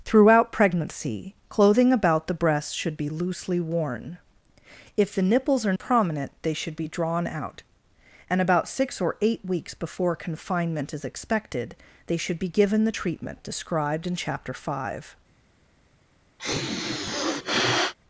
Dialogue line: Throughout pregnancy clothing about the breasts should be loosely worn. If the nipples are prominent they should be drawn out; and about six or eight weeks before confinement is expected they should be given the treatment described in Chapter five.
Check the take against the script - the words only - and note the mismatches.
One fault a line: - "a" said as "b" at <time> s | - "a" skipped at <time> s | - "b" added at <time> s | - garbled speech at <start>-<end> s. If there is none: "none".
none